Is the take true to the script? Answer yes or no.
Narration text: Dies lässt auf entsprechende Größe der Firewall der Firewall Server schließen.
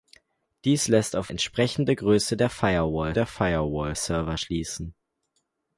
yes